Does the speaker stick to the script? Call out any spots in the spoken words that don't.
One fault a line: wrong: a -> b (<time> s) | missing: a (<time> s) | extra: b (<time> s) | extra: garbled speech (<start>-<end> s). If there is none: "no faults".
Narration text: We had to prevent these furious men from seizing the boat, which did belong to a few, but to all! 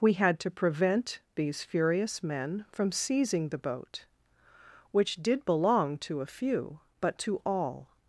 no faults